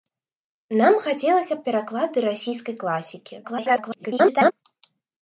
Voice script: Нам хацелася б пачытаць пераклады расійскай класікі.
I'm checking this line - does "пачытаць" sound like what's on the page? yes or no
no